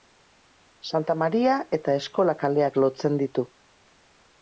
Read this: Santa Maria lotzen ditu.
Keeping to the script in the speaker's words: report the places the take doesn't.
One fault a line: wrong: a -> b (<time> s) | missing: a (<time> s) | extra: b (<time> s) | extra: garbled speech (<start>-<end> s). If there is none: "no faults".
extra: eta Eskola kaleak (1.8 s)